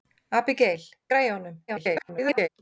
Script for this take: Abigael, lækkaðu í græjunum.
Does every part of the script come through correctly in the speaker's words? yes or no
no